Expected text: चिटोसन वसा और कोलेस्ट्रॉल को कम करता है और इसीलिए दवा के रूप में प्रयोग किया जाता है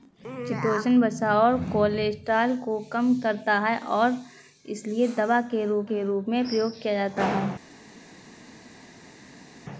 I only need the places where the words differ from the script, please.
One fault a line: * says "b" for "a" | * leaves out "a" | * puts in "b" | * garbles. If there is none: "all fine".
* puts in "के रूप"